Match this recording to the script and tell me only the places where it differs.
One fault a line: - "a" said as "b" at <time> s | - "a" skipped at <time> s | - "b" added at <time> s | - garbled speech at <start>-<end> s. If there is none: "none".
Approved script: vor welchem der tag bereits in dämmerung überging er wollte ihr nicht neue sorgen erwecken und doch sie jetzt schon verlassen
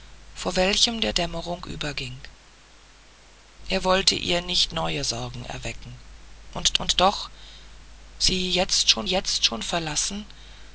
- "tag bereits in" skipped at 1.1 s
- "und" added at 6.8 s
- "jetzt schon" added at 9.1 s